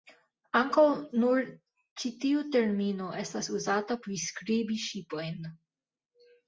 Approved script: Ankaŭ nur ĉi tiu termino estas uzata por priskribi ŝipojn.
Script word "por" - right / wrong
wrong